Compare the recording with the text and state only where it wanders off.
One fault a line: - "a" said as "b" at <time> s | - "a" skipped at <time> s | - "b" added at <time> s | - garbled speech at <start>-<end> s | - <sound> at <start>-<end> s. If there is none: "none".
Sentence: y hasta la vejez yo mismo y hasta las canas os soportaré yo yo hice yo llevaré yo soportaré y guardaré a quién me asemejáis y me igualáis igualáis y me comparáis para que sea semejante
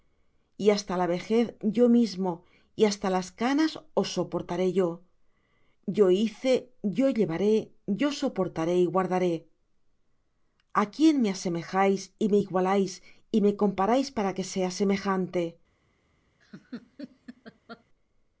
- "igualáis" skipped at 13.0 s
- laugh at 16.4-17.8 s